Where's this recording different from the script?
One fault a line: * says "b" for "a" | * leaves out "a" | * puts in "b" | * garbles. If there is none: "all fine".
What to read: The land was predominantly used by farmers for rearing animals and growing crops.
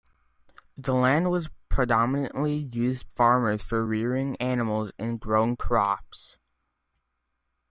* leaves out "by"